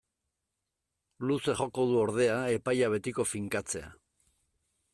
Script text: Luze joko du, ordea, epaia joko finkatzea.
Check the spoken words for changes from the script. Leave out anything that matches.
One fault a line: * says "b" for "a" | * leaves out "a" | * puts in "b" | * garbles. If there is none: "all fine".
* says "betiko" for "joko"